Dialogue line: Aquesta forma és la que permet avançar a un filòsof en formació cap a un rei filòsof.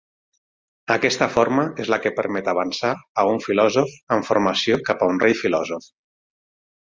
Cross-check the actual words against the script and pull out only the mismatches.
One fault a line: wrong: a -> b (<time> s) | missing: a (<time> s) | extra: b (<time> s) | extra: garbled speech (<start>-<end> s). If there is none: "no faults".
no faults